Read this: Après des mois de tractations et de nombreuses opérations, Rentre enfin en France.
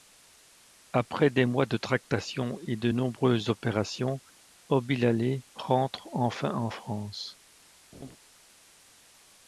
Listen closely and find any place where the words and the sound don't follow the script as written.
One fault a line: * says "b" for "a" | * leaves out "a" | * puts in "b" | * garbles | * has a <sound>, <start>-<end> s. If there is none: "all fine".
* puts in "Obilalé"
* has a laugh, 7.9-8.2 s